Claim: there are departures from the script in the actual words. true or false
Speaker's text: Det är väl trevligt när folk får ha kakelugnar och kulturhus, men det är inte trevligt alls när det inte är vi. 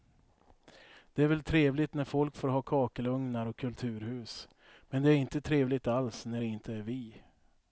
false